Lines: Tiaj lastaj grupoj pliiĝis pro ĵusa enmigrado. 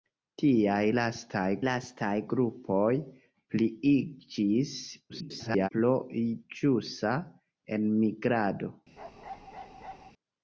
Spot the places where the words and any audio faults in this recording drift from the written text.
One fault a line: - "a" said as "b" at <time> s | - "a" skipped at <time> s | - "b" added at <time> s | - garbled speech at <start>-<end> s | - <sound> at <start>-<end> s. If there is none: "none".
- "lastaj" added at 1.7 s
- garbled speech at 5.1-5.7 s
- bark at 9.0-10.1 s